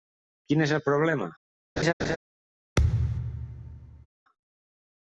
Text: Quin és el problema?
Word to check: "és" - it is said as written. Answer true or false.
true